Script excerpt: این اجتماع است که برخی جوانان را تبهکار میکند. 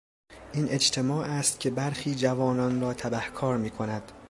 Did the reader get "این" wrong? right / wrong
right